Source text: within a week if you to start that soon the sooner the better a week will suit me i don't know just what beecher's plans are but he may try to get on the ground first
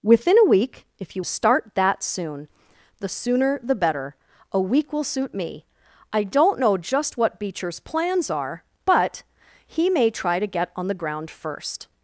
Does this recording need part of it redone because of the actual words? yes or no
no